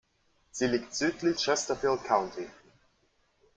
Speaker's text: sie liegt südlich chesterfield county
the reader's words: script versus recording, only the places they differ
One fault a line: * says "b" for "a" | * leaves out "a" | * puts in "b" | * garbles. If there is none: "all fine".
all fine